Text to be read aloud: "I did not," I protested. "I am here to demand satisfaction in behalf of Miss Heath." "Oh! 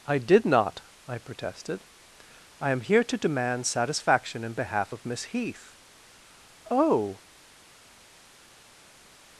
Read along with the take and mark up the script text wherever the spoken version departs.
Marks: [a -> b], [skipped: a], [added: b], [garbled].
"I did not," I protested. "I am here to demand satisfaction in behalf of Miss Heath." "Oh!